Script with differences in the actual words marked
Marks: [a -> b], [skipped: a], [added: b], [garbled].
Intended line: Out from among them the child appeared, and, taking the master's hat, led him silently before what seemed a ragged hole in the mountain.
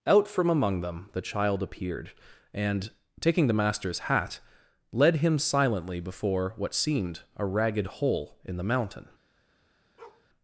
Out from among them the child appeared, and, taking the master's hat, led him silently before what seemed a ragged hole in the mountain.